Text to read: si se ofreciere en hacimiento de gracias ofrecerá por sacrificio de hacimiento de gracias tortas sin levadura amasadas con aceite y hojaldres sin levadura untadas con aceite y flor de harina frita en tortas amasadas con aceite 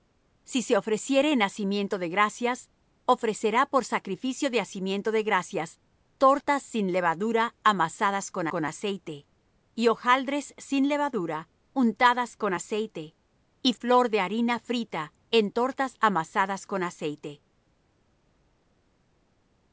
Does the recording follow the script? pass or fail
fail